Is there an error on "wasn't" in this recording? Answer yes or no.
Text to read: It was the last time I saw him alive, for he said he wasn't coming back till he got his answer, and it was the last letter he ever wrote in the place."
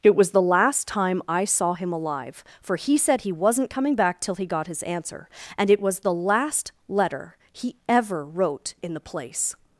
no